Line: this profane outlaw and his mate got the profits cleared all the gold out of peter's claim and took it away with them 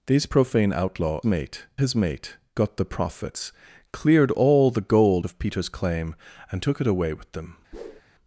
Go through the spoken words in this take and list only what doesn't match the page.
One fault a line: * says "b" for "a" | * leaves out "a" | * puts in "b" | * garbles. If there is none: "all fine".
* says "mate" for "and"
* leaves out "out"